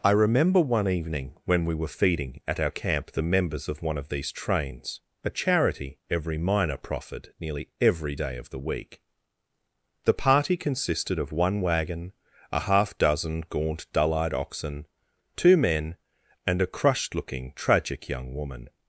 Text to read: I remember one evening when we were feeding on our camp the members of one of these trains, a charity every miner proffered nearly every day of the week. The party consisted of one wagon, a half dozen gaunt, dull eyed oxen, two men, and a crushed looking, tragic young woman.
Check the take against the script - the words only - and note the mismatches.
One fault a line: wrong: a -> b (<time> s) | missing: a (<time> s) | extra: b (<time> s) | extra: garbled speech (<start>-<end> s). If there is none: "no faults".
wrong: on -> at (2.5 s)